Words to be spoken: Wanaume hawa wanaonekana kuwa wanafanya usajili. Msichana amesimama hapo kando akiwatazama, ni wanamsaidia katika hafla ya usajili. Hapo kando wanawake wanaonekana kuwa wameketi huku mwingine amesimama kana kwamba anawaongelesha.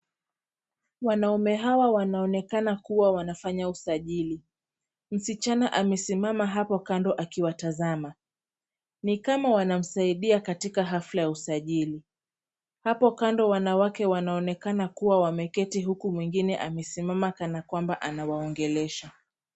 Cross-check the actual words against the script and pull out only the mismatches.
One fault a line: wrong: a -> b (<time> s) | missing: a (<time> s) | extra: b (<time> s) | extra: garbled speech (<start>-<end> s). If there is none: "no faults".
extra: kama (9.2 s)